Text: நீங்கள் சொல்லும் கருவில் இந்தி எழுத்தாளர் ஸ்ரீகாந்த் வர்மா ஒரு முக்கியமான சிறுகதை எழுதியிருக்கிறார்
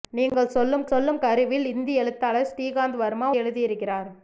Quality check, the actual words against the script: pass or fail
fail